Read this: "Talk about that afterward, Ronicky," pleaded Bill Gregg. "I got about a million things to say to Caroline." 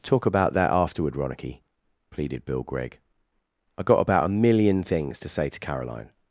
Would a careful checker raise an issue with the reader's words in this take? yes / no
no